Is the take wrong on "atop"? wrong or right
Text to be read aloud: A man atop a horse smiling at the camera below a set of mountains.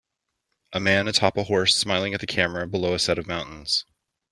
right